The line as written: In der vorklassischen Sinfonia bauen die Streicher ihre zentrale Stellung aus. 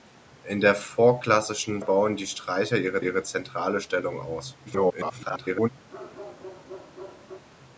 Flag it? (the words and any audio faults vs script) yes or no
yes